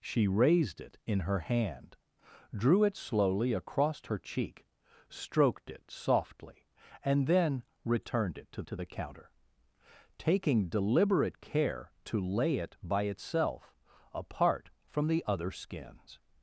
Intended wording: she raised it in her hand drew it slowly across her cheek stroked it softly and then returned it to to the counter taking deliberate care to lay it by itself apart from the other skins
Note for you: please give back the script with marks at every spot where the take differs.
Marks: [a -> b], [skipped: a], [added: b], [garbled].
she raised it in her hand drew it slowly across her cheek stroked it softly and then returned it to to the counter taking deliberate care to lay it by itself apart from the other skins